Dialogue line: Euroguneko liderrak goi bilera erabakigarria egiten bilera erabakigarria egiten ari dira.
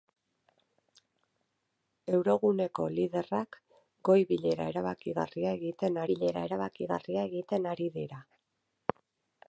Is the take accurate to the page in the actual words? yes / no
yes